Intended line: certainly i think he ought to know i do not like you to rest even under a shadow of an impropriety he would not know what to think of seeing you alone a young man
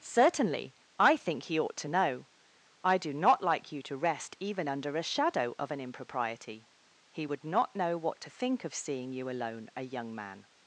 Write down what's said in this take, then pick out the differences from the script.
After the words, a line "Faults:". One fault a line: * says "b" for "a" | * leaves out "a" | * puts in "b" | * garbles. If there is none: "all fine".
certainly i think he ought to know i do not like you to rest even under a shadow of an impropriety he would not know what to think of seeing you alone a young man
Faults:
all fine